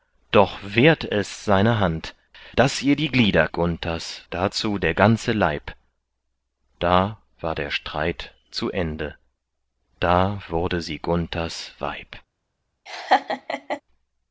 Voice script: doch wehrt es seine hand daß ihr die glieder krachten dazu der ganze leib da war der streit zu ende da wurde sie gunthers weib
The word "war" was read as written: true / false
true